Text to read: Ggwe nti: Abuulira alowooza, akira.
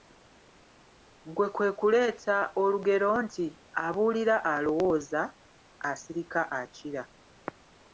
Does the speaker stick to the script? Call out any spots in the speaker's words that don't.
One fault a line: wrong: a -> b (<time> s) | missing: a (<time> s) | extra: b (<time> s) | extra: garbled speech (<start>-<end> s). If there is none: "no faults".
extra: kwe kuleeta olugero (1.6 s)
extra: asirika (5.9 s)